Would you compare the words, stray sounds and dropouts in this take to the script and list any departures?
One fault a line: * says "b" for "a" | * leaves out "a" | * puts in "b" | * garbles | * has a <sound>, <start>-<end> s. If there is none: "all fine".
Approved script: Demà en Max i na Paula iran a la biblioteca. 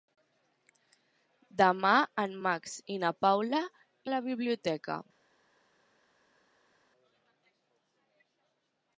* leaves out "iran"